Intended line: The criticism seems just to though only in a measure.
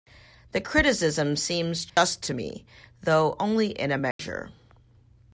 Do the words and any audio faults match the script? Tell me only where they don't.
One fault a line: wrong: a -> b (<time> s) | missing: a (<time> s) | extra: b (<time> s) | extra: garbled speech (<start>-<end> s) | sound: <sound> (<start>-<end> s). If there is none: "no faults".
sound: dropout (1.9-2.0 s)
extra: me (2.3 s)
sound: dropout (4.1-4.2 s)